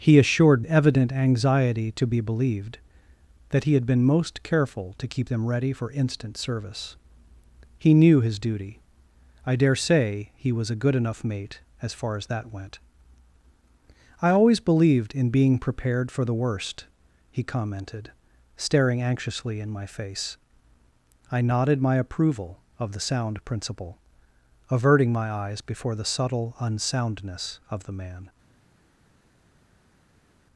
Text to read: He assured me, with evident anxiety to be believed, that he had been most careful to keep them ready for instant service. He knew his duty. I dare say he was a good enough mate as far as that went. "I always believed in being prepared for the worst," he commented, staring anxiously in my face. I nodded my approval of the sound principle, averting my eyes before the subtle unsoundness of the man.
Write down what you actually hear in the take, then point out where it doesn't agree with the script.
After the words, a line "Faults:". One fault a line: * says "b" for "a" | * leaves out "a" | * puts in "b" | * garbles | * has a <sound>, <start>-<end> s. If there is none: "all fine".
He assured evident anxiety to be believed, that he had been most careful to keep them ready for instant service. He knew his duty. I dare say he was a good enough mate as far as that went. "I always believed in being prepared for the worst," he commented, staring anxiously in my face. I nodded my approval of the sound principle, averting my eyes before the subtle unsoundness of the man.
Faults:
* leaves out "me with"